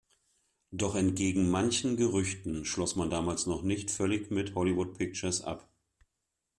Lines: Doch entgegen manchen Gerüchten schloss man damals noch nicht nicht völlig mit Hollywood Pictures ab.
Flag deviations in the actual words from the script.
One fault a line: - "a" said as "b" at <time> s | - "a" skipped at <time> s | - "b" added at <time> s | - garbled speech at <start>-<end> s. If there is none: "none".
- "nicht" skipped at 3.9 s